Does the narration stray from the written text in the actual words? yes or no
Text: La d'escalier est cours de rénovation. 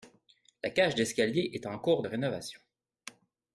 yes